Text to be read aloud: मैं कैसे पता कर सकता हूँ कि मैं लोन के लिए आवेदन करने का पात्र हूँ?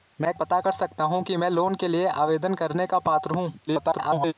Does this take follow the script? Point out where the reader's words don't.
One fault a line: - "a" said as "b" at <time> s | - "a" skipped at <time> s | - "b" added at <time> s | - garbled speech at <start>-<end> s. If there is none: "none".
- "कैसे" skipped at 0.3 s
- garbled speech at 3.7-4.3 s